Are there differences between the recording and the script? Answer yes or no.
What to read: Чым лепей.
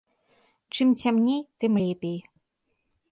yes